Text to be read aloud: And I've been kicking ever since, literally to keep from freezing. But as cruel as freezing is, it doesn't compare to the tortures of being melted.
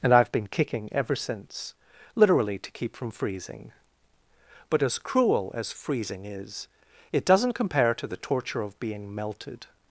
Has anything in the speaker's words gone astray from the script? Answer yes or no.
yes